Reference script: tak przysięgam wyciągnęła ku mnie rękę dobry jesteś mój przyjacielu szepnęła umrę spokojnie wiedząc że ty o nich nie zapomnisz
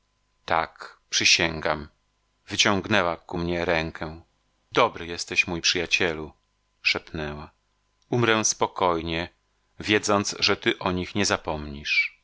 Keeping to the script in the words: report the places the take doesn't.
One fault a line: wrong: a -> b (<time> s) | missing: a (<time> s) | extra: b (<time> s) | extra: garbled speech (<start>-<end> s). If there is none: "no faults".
no faults